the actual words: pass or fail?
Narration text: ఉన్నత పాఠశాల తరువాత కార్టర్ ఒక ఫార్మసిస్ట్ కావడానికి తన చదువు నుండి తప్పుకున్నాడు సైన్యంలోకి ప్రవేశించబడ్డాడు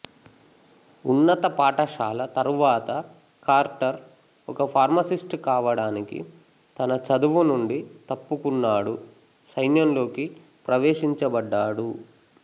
pass